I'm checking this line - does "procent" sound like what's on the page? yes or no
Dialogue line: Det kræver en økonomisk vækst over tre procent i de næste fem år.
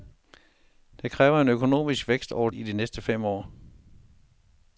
no